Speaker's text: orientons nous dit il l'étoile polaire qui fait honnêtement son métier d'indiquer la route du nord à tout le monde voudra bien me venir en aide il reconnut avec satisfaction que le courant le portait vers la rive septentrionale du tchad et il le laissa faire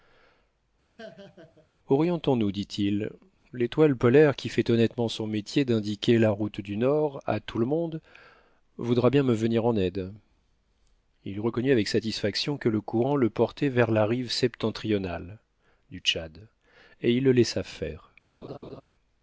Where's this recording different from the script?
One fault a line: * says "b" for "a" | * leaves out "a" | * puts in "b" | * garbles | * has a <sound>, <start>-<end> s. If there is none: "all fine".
* has a laugh, 1.0-1.7 s
* has a laugh, 18.4-18.8 s